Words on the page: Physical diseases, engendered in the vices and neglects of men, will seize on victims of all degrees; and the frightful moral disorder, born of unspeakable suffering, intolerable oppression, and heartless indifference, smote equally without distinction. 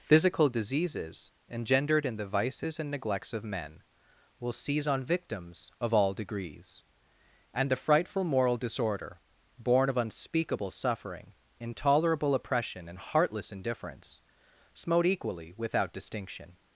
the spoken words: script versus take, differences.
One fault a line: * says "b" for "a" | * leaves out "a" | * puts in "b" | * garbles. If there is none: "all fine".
all fine